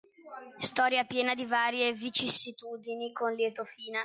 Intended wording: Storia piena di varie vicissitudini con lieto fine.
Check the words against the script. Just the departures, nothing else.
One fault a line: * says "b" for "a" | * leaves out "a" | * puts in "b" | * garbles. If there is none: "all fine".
all fine